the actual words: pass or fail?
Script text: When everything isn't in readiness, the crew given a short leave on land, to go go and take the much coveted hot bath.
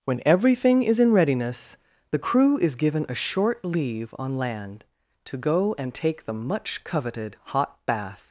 fail